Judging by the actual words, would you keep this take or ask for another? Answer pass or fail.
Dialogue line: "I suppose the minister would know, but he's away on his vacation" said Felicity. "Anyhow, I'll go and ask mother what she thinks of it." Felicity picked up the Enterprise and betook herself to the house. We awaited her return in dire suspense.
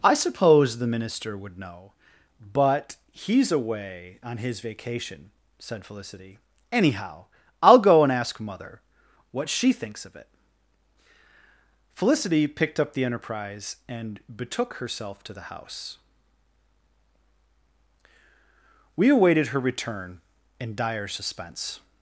pass